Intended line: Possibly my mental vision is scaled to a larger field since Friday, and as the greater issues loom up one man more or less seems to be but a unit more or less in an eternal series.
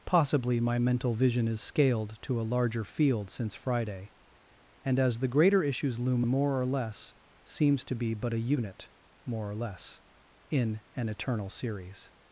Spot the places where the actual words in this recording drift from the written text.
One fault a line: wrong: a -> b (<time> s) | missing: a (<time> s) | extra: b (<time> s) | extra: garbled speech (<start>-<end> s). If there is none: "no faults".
missing: up one man (6.2 s)